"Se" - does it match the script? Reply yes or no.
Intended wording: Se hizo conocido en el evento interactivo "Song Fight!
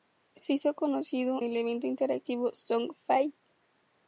yes